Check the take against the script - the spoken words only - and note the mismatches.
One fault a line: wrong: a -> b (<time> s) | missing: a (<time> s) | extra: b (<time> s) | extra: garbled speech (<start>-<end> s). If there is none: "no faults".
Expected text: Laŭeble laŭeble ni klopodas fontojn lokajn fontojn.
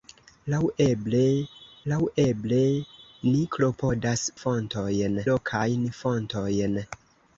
no faults